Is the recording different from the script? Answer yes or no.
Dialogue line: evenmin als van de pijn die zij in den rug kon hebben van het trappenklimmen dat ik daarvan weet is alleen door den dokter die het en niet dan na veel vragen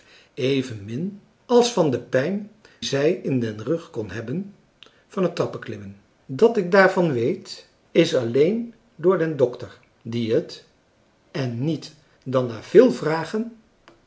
yes